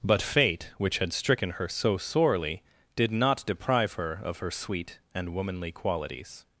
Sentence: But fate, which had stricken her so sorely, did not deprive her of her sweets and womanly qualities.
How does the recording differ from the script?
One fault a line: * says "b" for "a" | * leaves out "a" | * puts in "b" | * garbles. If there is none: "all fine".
* says "sweet" for "sweets"